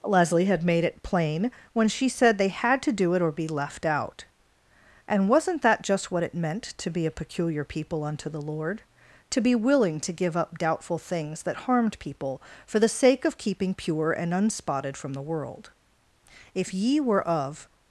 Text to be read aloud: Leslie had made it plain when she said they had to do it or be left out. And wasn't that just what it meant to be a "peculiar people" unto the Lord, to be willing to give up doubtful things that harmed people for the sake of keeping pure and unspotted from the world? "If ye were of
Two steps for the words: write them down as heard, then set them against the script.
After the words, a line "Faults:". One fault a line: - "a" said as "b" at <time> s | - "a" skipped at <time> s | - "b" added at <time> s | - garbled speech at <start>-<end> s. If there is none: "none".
Leslie had made it plain when she said they had to do it or be left out. And wasn't that just what it meant to be a "peculiar people" unto the Lord, to be willing to give up doubtful things that harmed people for the sake of keeping pure and unspotted from the world? "If ye were of
Faults:
none